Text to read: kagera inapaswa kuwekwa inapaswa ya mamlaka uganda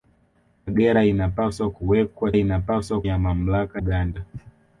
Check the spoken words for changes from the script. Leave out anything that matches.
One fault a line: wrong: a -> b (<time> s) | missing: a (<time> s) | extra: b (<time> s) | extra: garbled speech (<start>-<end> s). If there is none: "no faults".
no faults